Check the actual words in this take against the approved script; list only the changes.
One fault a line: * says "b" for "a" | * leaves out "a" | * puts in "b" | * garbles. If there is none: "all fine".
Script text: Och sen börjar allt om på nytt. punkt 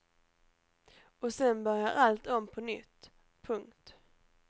all fine